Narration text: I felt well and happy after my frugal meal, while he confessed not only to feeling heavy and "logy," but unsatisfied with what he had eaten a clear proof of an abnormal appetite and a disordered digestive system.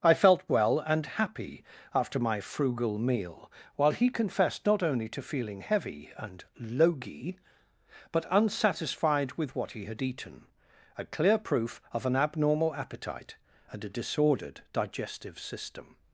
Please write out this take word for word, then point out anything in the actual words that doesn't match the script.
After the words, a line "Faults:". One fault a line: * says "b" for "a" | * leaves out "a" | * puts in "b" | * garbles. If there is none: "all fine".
I felt well and happy after my frugal meal, while he confessed not only to feeling heavy and "logy," but unsatisfied with what he had eaten a clear proof of an abnormal appetite and a disordered digestive system.
Faults:
all fine